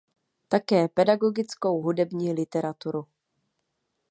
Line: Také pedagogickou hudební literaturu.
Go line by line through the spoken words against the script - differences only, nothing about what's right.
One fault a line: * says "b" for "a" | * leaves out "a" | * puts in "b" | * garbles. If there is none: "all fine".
all fine